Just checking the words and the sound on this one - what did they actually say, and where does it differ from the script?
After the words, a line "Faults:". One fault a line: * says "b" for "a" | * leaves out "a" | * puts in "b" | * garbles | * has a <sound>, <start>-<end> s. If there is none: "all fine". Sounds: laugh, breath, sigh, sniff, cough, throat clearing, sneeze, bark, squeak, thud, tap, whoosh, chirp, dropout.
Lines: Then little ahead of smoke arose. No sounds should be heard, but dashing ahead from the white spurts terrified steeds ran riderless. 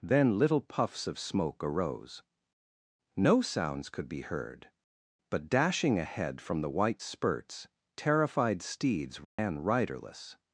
Then little puffs of smoke arose. No sounds could be heard, but dashing ahead from the white spurts terrified steeds ran riderless.
Faults:
* says "puffs" for "ahead"
* says "could" for "should"
* has a dropout, 9.2-9.4 s